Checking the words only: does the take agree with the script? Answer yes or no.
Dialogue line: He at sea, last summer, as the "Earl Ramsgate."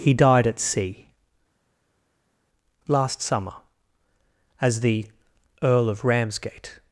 no